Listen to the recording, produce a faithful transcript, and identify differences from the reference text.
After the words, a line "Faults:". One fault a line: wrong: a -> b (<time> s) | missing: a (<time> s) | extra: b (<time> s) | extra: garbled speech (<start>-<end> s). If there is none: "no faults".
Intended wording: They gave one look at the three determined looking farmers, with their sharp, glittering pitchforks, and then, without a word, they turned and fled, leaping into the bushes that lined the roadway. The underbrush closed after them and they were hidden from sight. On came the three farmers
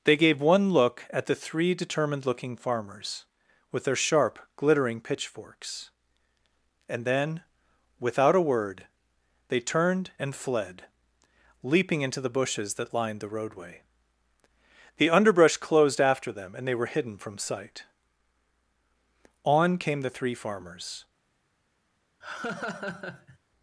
They gave one look at the three determined looking farmers, with their sharp, glittering pitchforks, and then, without a word, they turned and fled, leaping into the bushes that lined the roadway. The underbrush closed after them and they were hidden from sight. On came the three farmers
Faults:
no faults